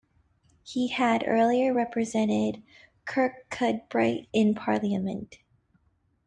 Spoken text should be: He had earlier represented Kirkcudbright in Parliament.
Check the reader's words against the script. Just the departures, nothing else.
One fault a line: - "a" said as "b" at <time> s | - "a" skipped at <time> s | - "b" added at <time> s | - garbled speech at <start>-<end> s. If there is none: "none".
none